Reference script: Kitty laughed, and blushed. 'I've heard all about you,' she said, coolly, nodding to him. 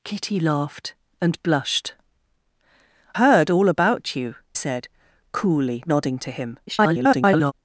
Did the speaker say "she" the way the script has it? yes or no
no